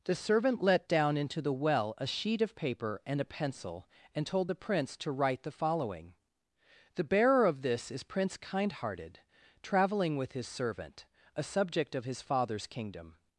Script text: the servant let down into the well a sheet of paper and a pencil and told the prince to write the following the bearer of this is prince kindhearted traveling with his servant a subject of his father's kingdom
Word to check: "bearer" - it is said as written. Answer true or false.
true